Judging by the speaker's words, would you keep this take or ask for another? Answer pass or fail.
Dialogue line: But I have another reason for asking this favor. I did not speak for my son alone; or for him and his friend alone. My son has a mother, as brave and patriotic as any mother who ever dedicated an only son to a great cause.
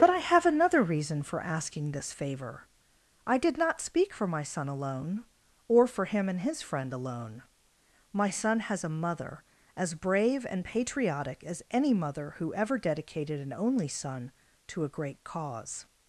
pass